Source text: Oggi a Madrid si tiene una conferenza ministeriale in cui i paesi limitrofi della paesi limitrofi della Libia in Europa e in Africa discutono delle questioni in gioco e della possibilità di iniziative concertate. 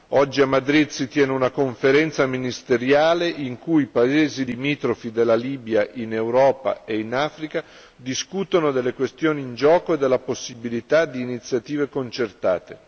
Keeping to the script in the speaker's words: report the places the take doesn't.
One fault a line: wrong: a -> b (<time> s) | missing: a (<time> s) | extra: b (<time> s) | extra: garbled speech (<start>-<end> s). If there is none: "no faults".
missing: paesi limitrofi della (5.3 s)